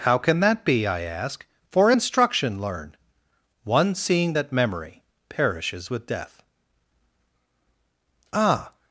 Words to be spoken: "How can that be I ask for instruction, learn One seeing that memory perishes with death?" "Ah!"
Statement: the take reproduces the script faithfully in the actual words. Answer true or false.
true